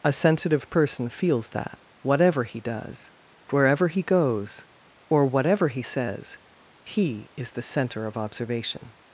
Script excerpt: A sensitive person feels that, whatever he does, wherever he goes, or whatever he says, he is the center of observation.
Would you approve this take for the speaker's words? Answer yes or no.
yes